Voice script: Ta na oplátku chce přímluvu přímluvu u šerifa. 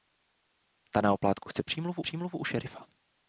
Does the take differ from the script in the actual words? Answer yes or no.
no